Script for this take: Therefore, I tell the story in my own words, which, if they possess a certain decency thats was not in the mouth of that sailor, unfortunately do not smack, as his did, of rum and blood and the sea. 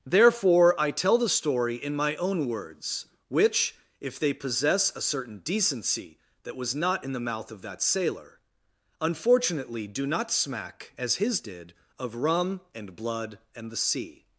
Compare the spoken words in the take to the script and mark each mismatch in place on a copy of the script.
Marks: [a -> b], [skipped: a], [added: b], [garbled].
Therefore, I tell the story in my own words, which, if they possess a certain decency [thats -> that] was not in the mouth of that sailor, unfortunately do not smack, as his did, of rum and blood and the sea.